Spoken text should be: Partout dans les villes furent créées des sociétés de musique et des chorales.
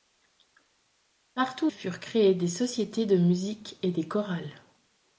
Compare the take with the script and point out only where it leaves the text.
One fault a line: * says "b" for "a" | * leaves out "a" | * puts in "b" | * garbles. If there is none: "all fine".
* leaves out "dans les villes"